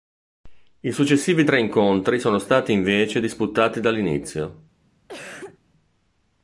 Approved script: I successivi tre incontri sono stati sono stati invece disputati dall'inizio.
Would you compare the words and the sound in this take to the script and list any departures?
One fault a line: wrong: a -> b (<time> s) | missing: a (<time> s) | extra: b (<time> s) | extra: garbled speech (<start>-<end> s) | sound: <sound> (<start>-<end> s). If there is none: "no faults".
missing: sono stati (2.7 s)
sound: cough (5.1-5.6 s)